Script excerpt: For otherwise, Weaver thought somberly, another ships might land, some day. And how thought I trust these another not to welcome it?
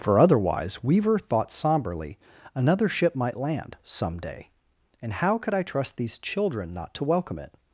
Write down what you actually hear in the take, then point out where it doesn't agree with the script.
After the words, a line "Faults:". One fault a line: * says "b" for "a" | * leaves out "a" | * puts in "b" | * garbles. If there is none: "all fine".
For otherwise, Weaver thought somberly, another ship might land, some day. And how could I trust these children not to welcome it?
Faults:
* says "ship" for "ships"
* says "could" for "thought"
* says "children" for "another"